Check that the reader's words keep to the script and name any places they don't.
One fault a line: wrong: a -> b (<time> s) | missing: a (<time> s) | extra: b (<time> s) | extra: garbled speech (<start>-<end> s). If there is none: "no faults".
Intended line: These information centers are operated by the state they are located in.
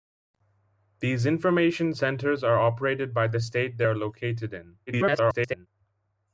extra: garbled speech (4.9-5.7 s)